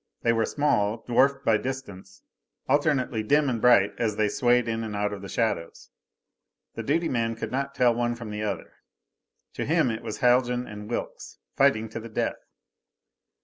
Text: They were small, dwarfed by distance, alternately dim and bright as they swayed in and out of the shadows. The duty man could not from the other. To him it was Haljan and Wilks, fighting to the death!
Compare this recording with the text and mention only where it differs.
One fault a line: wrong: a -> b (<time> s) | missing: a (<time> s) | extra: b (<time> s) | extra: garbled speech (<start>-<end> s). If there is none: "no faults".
extra: tell one (7.8 s)